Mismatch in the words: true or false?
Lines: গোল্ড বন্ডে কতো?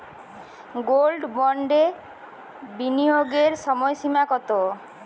true